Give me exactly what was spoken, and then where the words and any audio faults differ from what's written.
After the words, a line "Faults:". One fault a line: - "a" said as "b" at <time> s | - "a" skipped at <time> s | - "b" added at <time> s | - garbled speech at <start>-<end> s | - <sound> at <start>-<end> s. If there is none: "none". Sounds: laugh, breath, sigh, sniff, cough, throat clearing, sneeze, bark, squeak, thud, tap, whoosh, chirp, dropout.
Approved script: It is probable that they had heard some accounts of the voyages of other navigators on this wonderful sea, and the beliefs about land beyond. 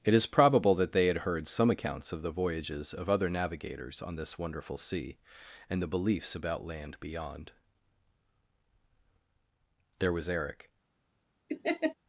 It is probable that they had heard some accounts of the voyages of other navigators on this wonderful sea, and the beliefs about land beyond. There was Eric
Faults:
- "There was Eric" added at 10.0 s
- laugh at 11.5-11.9 s